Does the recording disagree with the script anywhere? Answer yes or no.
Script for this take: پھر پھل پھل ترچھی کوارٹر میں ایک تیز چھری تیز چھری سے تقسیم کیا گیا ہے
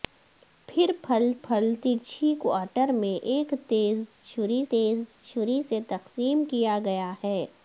no